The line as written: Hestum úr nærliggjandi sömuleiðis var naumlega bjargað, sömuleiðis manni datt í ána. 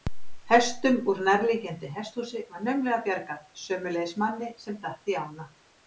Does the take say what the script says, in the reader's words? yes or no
no